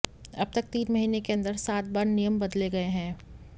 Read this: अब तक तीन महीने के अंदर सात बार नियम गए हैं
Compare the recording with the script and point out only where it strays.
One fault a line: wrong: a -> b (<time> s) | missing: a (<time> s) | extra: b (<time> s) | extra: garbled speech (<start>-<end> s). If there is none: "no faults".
extra: बदले (2.4 s)